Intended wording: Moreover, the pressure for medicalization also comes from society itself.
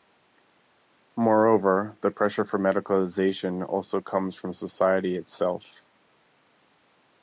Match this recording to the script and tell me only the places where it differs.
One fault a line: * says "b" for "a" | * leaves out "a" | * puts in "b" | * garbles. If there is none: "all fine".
all fine